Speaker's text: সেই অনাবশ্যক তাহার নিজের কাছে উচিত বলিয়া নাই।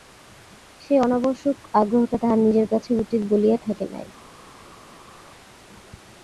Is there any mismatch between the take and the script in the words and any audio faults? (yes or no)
yes